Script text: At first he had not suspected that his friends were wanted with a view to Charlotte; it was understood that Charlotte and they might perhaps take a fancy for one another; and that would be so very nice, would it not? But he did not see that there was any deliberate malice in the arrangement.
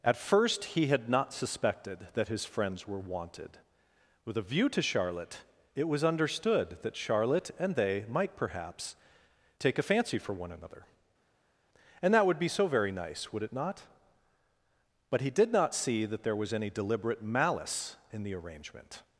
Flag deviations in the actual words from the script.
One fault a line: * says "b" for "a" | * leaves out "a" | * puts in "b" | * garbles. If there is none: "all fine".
all fine